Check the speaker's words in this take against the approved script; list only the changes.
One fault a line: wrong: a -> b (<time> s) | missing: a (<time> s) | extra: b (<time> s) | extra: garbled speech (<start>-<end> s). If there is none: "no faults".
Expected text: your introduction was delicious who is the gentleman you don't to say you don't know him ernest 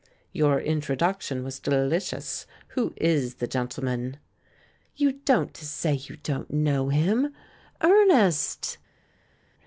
no faults